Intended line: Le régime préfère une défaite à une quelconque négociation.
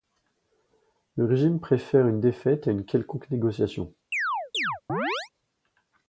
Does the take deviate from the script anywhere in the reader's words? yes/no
no